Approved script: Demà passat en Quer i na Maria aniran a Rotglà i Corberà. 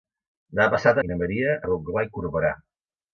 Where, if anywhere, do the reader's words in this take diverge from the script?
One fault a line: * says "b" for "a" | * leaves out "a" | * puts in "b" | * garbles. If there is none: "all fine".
* leaves out "en Quer"
* leaves out "aniran"